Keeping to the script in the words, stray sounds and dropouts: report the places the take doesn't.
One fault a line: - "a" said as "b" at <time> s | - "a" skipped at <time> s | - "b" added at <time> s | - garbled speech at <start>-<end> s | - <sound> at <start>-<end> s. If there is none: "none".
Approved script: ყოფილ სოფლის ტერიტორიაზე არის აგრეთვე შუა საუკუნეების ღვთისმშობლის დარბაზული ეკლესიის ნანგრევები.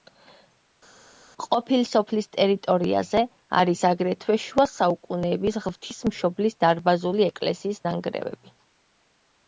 none